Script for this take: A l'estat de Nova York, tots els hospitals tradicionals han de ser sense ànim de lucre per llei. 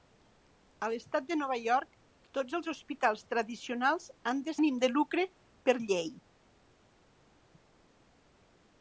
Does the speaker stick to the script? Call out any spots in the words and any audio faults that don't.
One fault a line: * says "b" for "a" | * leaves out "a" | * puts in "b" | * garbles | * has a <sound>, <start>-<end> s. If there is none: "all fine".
* leaves out "ser sense"